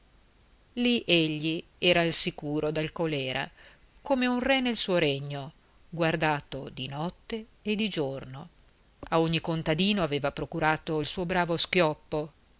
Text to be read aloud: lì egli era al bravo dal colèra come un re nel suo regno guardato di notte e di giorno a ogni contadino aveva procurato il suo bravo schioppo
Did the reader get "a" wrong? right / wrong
right